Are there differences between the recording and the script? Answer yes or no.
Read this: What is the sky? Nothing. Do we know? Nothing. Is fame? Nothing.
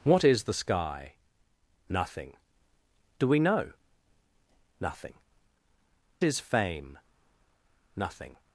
no